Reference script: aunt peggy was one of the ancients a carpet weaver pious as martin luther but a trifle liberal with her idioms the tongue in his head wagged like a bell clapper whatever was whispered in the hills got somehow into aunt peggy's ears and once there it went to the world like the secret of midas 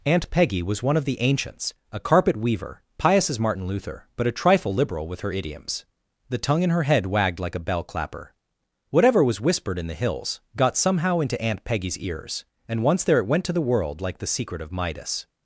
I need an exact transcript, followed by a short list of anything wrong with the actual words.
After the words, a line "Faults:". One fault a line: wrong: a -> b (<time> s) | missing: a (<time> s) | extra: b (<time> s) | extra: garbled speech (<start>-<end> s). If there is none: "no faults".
aunt peggy was one of the ancients a carpet weaver pious as martin luther but a trifle liberal with her idioms the tongue in her head wagged like a bell clapper whatever was whispered in the hills got somehow into aunt peggy's ears and once there it went to the world like the secret of midas
Faults:
wrong: his -> her (6.7 s)